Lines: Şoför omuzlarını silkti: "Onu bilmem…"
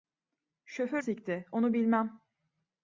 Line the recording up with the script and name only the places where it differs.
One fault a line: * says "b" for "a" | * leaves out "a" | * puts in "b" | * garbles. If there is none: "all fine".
* leaves out "omuzlarını"